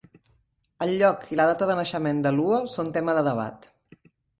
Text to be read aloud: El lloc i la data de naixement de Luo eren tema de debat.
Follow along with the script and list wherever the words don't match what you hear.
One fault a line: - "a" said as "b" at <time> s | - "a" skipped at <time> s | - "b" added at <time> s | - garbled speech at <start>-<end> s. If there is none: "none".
- "eren" said as "són" at 2.8 s